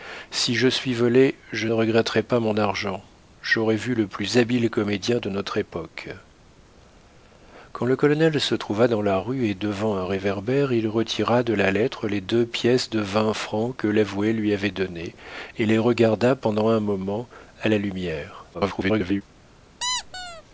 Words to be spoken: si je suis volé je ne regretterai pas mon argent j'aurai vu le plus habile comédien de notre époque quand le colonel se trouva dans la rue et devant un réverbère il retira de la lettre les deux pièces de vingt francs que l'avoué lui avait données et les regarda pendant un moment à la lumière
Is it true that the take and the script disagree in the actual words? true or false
true